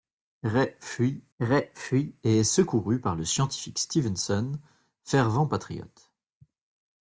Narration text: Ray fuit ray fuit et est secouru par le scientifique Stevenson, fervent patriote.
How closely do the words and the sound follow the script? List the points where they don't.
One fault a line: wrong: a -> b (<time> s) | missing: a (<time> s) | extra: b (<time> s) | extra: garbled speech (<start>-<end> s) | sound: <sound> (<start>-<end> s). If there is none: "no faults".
no faults